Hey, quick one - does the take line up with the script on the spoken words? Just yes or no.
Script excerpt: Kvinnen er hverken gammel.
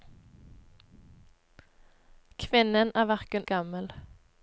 yes